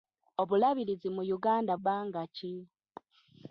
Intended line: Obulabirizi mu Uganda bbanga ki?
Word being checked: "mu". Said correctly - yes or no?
yes